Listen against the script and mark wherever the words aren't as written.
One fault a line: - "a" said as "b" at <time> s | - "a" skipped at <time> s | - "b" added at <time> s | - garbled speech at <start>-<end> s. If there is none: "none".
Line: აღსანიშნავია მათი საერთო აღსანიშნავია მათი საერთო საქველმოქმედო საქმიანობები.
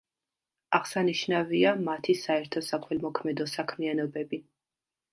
- "აღსანიშნავია მათი საერთო" skipped at 2.6 s